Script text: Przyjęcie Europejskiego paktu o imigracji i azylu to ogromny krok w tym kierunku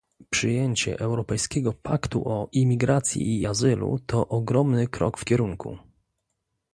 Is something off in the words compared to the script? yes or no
yes